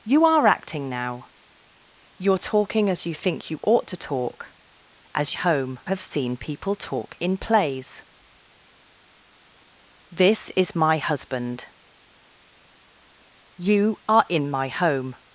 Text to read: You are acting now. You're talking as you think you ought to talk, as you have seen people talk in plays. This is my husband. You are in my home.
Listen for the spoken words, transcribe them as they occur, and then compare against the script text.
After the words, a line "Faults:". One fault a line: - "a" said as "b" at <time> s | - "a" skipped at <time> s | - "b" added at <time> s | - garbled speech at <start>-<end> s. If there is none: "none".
You are acting now. You're talking as you think you ought to talk, as home have seen people talk in plays. This is my husband. You are in my home.
Faults:
- "you" said as "home" at 5.3 s